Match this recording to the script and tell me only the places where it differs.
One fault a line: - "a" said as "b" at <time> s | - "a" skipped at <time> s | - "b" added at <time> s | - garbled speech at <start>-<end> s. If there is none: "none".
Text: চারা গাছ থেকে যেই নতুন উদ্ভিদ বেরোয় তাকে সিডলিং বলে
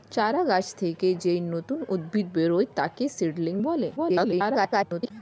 - garbled speech at 4.0-5.1 s